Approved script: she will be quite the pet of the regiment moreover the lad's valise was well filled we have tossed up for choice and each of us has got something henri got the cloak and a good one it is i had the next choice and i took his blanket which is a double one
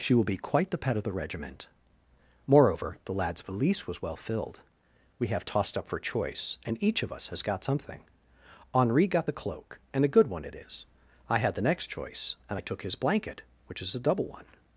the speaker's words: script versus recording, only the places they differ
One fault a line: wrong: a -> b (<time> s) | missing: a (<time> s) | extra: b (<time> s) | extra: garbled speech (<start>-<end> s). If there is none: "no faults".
no faults